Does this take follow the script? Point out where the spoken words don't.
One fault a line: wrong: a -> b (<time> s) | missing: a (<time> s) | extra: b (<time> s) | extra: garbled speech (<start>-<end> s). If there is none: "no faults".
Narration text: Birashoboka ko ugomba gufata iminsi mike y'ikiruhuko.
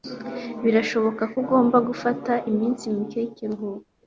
no faults